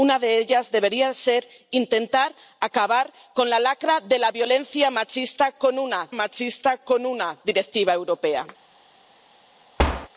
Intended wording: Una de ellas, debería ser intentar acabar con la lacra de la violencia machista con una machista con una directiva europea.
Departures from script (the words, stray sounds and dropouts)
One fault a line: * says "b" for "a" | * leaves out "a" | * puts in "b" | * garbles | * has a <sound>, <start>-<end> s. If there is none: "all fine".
* has a thud, 9.8-10.1 s